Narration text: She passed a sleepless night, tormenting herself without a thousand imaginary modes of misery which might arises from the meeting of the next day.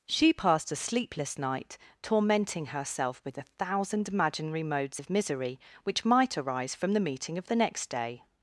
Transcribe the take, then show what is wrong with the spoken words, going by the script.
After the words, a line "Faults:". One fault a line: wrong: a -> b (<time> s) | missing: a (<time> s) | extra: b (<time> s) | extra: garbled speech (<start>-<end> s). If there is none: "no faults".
She passed a sleepless night, tormenting herself with a thousand imaginary modes of misery which might arise from the meeting of the next day.
Faults:
wrong: without -> with (3.2 s)
wrong: arises -> arise (6.4 s)